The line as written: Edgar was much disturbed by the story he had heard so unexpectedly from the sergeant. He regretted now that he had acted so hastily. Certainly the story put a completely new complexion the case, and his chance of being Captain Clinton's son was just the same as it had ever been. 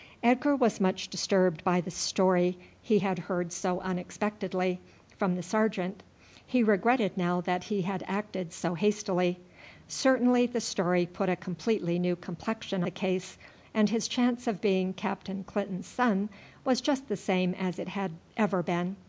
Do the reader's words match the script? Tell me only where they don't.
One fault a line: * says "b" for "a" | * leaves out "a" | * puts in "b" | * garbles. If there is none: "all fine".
all fine